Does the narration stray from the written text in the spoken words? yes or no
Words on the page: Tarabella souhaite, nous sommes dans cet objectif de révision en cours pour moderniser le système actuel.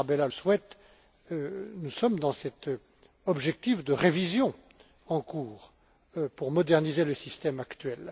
no